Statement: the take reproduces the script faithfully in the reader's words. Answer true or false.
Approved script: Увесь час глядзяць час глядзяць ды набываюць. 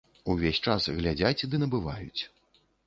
false